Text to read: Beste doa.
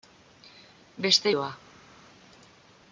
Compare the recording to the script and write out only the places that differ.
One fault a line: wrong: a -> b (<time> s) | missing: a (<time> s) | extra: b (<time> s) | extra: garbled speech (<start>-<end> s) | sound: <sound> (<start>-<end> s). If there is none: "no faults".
no faults